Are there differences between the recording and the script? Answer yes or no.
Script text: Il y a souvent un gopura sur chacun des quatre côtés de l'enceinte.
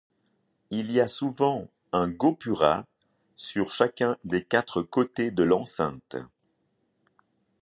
no